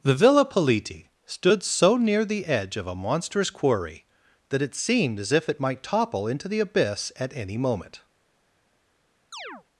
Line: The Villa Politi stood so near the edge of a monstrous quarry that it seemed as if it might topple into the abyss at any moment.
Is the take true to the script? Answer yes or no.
yes